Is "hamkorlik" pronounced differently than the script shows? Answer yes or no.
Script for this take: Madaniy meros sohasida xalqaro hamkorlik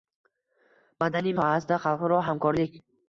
no